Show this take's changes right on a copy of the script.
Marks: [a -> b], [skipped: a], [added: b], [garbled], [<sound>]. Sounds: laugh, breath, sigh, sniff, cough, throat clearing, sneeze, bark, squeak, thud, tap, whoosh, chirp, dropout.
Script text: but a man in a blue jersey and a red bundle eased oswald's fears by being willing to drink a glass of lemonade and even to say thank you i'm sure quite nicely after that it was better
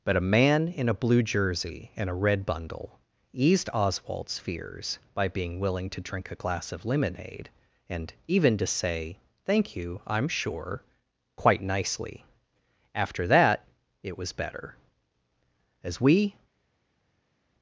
but a man in a blue jersey and a red bundle eased oswald's fears by being willing to drink a glass of lemonade and even to say thank you i'm sure quite nicely after that it was better [added: as we]